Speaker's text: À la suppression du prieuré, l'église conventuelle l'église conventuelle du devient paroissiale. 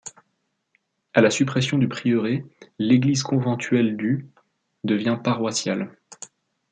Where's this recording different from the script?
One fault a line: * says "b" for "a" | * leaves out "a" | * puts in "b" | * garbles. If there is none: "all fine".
* leaves out "l'église conventuelle"